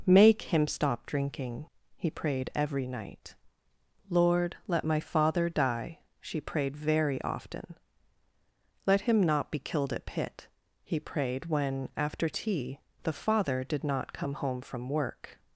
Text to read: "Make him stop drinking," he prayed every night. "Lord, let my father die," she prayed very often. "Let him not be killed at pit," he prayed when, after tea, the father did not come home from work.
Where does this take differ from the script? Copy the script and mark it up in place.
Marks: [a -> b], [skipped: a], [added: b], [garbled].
"Make him stop drinking," he prayed every night. "Lord, let my father die," she prayed very often. "Let him not be killed at pit," he prayed when, after tea, the father did not come home from work.